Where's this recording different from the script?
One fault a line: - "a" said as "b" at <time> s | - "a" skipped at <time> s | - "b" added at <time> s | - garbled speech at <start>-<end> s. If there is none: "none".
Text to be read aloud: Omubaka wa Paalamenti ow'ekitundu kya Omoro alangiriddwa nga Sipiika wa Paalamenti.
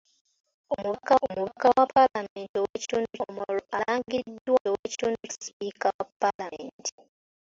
- "omubaka" added at 1.2 s
- "kya" skipped at 3.1 s
- "nga" said as "ow'ekitundu" at 4.7 s